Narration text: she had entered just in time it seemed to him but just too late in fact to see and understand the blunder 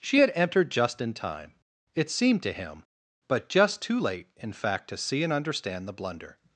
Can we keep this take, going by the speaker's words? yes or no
yes